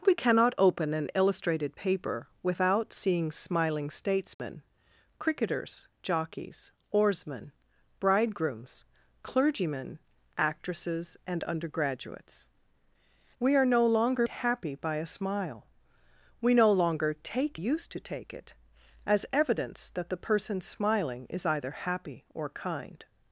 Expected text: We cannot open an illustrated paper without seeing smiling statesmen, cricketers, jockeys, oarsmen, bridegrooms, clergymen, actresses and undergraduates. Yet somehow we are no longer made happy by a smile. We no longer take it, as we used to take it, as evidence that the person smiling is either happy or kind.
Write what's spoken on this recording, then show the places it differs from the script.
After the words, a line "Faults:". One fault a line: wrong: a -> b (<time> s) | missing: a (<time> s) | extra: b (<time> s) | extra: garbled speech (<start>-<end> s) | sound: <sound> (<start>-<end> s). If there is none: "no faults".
We cannot open an illustrated paper without seeing smiling statesmen, cricketers, jockeys, oarsmen, bridegrooms, clergymen, actresses and undergraduates. We are no longer happy by a smile. We no longer take used to take it, as evidence that the person smiling is either happy or kind.
Faults:
sound: dropout (4.3-4.4 s)
missing: Yet somehow (12.5 s)
missing: made (14.3 s)
missing: it as we (17.6 s)